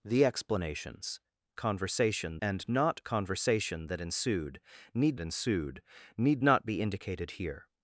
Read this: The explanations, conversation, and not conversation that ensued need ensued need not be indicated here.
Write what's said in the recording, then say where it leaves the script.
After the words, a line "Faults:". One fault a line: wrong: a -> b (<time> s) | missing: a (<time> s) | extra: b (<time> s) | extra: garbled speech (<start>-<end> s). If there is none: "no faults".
The explanations, conversation, and not conversation that ensued need ensued need not be indicated here.
Faults:
no faults